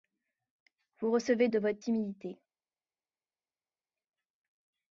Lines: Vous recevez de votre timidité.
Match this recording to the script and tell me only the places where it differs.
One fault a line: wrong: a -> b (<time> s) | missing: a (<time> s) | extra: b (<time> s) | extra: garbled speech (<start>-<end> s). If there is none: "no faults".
no faults